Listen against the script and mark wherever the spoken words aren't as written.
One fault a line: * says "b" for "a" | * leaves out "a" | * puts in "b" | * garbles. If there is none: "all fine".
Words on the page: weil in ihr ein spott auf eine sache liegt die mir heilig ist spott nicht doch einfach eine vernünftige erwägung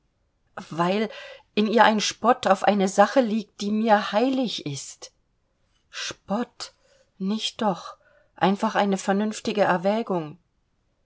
all fine